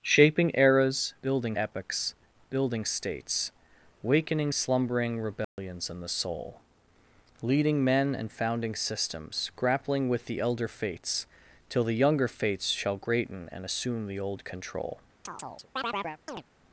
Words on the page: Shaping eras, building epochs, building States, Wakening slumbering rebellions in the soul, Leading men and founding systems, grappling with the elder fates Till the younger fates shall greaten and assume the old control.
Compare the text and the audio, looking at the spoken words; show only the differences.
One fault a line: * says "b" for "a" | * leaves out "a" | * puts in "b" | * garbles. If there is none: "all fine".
all fine